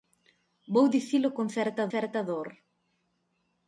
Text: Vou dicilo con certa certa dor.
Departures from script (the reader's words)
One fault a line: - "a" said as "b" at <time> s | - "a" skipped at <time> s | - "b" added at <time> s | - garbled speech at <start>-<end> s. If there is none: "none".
none